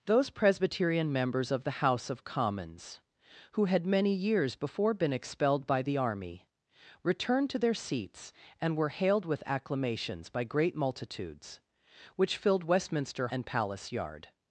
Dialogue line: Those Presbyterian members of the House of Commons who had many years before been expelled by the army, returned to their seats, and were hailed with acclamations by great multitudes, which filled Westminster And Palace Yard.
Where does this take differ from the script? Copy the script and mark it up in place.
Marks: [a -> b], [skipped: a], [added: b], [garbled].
Those Presbyterian members of the House of Commons who had many years before been expelled by the army, returned to their seats, and were hailed with acclamations by great multitudes, which filled Westminster And Palace Yard.